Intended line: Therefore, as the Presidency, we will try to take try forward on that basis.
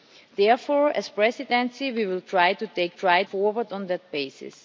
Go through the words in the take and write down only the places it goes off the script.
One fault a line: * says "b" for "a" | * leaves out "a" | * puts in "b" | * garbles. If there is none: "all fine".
all fine